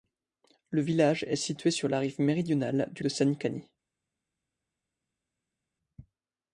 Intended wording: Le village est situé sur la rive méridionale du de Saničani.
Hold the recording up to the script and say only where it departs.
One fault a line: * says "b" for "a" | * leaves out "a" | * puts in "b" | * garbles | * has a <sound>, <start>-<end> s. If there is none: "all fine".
all fine